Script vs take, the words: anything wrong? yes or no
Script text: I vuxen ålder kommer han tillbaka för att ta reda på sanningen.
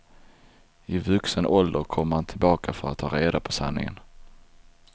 no